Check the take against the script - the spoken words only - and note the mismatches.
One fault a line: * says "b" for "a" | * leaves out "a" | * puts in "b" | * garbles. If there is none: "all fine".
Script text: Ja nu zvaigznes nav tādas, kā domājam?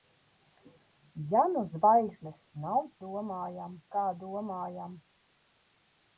* says "domājam" for "tādas"